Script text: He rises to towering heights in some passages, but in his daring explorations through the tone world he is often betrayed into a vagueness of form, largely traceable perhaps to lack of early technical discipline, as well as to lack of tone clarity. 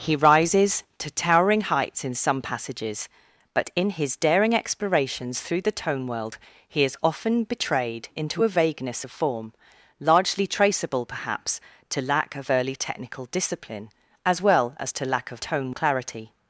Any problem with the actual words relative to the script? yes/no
no